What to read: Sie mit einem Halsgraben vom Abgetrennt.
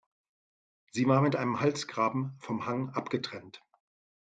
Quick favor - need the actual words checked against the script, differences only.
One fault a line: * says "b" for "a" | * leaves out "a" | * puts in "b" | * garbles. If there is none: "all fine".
* puts in "war"
* puts in "Hang"